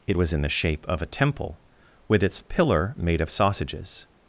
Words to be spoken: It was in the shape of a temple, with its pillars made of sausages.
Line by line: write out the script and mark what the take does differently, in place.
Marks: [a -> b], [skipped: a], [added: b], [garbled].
It was in the shape of a temple, with its [pillars -> pillar] made of sausages.